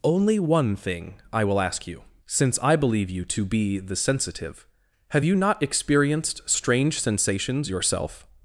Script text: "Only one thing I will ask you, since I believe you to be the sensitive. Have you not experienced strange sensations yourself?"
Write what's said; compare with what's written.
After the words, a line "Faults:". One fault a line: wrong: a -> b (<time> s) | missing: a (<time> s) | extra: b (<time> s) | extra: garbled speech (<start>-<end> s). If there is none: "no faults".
"Only one thing I will ask you, since I believe you to be the sensitive. Have you not experienced strange sensations yourself?"
Faults:
no faults